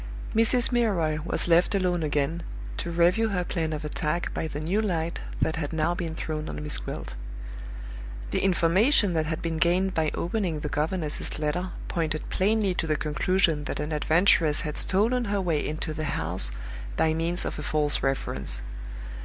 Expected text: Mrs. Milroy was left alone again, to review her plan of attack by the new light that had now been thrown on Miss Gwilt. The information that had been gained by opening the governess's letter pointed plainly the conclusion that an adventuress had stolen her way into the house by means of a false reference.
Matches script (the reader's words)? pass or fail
fail